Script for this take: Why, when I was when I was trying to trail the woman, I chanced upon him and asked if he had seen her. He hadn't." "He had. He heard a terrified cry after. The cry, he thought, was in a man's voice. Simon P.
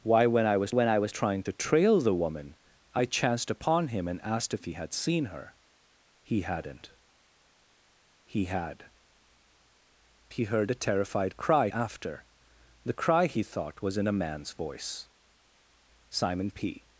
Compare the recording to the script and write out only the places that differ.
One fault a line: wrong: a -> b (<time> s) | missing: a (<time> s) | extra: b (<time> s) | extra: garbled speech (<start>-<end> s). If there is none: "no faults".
no faults